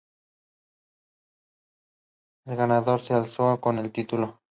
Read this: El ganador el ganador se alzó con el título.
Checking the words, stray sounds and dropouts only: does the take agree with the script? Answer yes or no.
no